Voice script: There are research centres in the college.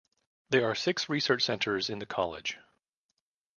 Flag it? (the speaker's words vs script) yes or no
yes